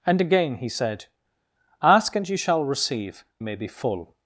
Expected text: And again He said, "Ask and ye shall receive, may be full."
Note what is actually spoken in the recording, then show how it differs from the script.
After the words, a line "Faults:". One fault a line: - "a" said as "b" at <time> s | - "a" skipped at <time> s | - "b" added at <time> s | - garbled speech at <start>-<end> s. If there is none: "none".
And again He said, "Ask and ye shall receive, may be full."
Faults:
none